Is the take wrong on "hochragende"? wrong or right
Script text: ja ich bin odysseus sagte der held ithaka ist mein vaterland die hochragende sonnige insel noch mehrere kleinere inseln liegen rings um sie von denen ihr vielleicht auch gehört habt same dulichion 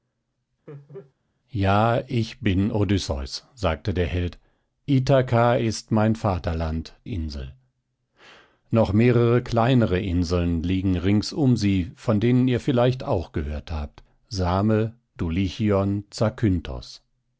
wrong